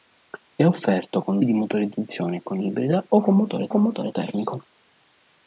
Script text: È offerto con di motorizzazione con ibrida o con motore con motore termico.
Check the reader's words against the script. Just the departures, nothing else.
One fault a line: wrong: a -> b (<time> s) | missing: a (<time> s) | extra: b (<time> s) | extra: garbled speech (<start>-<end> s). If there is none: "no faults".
no faults